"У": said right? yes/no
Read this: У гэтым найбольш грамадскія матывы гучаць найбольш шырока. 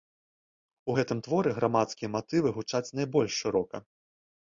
yes